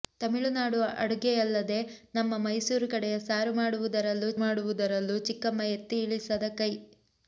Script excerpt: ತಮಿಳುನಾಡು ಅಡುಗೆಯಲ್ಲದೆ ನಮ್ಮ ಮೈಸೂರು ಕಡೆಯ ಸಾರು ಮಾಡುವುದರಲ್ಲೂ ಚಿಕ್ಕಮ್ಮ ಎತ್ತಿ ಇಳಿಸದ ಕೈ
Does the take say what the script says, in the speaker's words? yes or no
no